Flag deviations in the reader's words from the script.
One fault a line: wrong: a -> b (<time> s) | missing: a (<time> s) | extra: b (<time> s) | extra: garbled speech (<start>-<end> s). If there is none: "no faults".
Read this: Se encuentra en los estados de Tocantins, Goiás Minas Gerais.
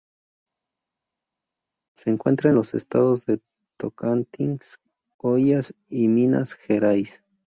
extra: y (5.9 s)